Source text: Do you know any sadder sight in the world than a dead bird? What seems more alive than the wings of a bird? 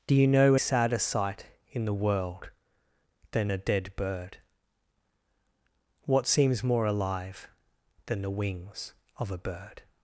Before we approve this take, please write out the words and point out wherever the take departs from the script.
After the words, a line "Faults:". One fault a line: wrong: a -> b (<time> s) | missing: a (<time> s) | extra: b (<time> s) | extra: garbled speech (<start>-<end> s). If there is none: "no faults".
Do you know sadder sight in the world than a dead bird? What seems more alive than the wings of a bird?
Faults:
missing: any (0.6 s)